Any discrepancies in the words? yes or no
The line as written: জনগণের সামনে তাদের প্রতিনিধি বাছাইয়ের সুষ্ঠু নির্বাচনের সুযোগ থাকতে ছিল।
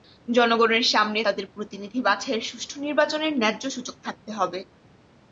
yes